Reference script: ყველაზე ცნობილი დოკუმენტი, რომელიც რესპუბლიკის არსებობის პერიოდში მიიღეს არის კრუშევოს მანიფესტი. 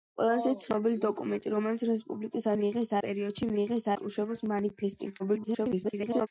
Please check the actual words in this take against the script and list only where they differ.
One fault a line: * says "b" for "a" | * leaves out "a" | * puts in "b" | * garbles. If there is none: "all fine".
* says "მიიღეს" for "არსებობის"
* leaves out "არის"
* garbles